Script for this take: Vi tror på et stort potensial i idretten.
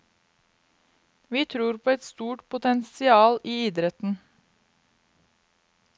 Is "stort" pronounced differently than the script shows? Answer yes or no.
no